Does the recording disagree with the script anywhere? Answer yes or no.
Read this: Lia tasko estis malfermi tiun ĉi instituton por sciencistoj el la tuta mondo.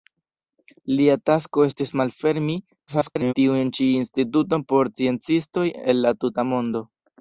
yes